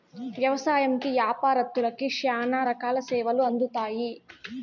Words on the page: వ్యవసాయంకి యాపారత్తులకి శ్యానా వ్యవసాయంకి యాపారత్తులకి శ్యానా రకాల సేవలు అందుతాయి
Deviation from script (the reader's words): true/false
true